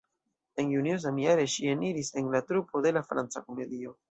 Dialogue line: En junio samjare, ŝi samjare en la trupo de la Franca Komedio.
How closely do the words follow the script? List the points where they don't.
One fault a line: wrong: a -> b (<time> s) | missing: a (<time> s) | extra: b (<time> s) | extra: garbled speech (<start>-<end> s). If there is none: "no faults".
wrong: samjare -> eniris (1.8 s)